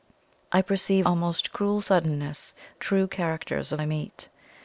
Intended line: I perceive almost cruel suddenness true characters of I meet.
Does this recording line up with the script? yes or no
yes